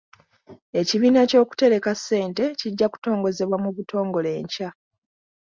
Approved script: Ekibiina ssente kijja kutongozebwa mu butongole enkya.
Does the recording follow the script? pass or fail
fail